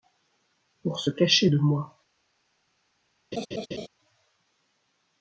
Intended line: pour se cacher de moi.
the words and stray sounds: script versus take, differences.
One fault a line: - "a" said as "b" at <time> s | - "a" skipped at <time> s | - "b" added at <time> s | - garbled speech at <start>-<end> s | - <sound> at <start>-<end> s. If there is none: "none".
- laugh at 3.3-3.9 s